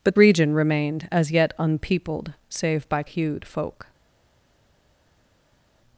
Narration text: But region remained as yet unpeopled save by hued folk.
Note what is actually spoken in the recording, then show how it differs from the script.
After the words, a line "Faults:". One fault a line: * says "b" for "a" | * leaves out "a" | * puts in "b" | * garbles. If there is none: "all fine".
But region remained as yet unpeopled save by hued folk.
Faults:
all fine